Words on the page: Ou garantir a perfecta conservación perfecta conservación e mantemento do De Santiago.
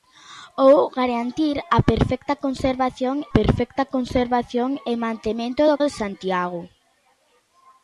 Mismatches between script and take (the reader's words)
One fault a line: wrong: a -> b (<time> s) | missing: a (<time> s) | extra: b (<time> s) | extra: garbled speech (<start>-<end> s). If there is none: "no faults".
no faults